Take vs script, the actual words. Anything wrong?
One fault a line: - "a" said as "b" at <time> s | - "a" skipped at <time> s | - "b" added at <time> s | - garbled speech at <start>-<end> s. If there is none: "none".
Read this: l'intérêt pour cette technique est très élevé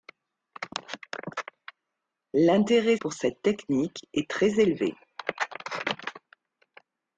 none